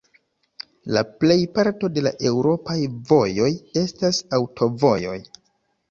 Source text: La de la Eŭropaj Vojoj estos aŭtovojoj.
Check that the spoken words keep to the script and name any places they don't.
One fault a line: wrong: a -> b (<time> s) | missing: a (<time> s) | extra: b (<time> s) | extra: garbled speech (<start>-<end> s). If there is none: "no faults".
extra: plejparto (1.2 s)
wrong: estos -> estas (3.8 s)